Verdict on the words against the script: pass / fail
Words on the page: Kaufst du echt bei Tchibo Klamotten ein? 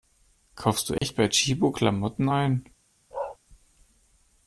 pass